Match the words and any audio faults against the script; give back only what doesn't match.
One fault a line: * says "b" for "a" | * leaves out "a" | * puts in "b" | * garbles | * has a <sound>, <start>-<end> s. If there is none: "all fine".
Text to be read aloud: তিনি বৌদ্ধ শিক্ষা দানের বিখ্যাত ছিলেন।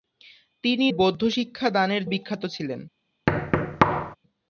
* has a thud, 3.3-4.2 s